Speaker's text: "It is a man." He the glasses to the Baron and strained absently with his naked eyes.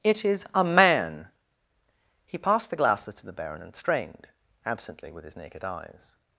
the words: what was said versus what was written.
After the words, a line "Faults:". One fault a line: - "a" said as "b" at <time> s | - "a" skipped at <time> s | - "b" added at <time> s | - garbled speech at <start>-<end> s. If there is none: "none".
"It is a man." He passed the glasses to the Baron and strained absently with his naked eyes.
Faults:
- "passed" added at 2.4 s